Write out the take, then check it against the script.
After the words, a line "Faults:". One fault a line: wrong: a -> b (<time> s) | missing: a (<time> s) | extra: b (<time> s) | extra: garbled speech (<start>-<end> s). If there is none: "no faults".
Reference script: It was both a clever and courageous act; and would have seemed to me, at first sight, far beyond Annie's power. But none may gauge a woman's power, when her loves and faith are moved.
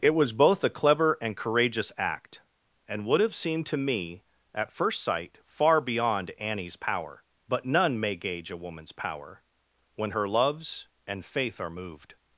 It was both a clever and courageous act; and would have seemed to me, at first sight, far beyond Annie's power. But none may gauge a woman's power, when her loves and faith are moved.
Faults:
no faults